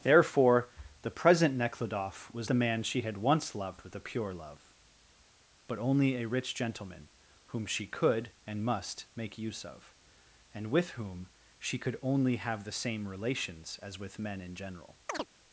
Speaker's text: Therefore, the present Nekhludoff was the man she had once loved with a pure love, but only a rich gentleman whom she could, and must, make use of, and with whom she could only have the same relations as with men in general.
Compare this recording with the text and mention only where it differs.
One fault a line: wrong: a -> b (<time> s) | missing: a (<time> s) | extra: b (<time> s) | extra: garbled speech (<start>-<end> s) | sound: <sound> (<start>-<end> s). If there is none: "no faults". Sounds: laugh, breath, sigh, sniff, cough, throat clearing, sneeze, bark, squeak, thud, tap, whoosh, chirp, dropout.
sound: chirp (15.1-15.3 s)